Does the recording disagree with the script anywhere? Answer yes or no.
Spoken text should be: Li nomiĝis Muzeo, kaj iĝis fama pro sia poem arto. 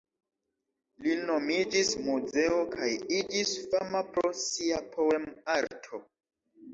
no